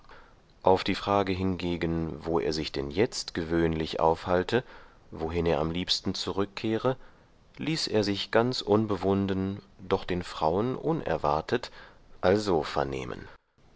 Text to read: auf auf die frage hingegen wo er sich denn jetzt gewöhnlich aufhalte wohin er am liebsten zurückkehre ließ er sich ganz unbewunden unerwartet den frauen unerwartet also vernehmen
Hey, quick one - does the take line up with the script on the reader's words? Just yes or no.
no